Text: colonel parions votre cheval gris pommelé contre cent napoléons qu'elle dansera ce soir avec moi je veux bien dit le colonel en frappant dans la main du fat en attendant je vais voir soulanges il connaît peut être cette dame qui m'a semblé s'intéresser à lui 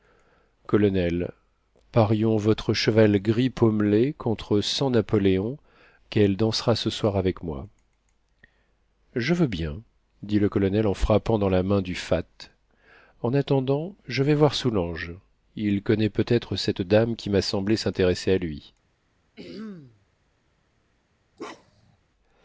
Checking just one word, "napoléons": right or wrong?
right